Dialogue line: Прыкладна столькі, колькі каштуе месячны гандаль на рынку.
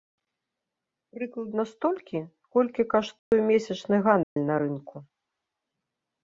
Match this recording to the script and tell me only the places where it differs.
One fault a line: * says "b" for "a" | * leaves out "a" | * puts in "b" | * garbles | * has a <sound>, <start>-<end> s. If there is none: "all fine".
* has a dropout, 3.2-3.3 s
* has a dropout, 4.2-4.4 s